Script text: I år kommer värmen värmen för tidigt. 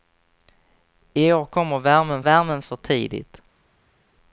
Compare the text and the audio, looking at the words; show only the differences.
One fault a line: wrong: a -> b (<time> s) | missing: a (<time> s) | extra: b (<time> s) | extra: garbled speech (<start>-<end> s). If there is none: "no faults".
no faults